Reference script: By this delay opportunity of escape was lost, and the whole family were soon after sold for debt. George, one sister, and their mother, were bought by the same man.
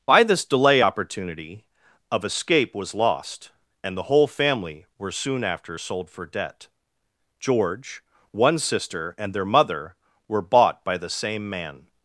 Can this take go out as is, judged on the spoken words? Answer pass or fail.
pass